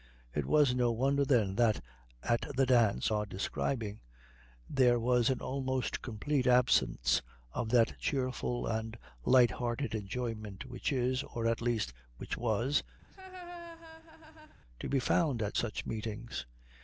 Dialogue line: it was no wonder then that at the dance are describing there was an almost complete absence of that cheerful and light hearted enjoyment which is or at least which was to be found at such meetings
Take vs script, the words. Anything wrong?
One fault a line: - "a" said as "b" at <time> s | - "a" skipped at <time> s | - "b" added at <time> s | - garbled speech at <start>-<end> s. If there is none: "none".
none